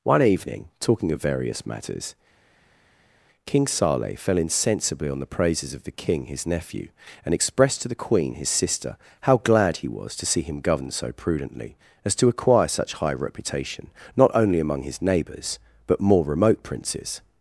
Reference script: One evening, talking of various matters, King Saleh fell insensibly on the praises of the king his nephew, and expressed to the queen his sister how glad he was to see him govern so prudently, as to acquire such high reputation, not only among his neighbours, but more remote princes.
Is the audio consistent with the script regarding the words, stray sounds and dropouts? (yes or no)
yes